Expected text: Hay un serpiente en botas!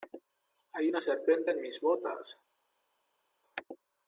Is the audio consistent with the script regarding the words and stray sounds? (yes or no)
no